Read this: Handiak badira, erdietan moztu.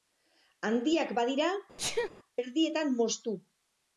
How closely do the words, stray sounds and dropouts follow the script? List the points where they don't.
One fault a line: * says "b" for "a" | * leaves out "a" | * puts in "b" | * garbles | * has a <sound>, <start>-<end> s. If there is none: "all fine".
* has a sneeze, 1.8-2.1 s